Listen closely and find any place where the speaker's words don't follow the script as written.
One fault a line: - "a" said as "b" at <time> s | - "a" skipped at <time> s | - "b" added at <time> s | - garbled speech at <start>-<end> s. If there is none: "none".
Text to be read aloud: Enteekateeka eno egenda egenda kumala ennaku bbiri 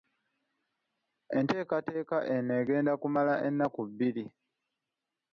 - "egenda" skipped at 2.9 s